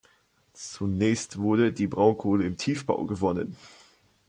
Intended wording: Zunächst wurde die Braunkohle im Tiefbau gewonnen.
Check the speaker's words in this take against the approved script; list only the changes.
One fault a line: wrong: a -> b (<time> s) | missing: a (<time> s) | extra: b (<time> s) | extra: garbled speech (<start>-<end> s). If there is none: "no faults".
no faults